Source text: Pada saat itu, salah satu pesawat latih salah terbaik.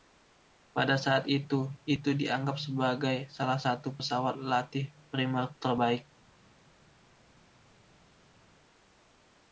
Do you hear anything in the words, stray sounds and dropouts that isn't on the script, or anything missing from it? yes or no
yes